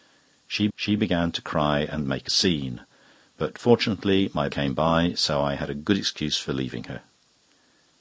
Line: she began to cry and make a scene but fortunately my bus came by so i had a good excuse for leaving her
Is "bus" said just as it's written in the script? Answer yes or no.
no